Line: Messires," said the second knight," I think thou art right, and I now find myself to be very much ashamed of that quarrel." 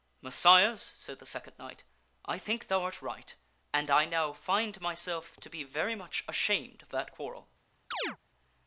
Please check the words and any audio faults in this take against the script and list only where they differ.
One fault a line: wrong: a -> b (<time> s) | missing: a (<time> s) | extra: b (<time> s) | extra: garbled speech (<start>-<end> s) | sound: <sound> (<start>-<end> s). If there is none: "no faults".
sound: chirp (7.9-8.2 s)